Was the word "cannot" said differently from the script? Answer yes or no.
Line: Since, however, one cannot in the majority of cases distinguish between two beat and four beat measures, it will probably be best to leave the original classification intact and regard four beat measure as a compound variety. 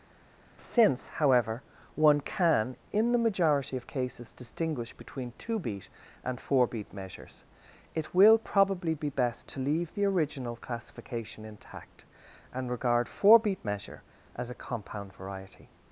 yes